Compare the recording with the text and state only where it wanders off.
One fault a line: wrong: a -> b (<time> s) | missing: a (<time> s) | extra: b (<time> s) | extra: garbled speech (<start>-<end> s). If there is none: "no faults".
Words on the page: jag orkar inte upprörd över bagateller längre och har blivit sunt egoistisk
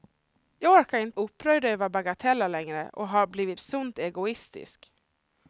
no faults